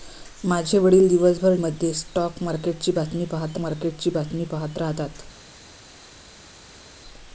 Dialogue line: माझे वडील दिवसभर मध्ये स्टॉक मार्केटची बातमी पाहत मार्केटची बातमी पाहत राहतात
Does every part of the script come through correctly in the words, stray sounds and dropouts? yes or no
yes